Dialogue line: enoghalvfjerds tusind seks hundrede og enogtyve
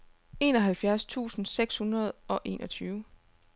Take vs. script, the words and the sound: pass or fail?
pass